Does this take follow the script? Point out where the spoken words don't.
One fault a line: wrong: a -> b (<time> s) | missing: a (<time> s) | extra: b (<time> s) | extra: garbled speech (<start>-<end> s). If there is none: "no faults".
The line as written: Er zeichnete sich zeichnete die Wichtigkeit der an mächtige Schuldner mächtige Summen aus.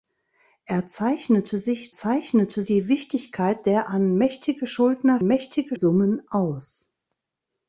no faults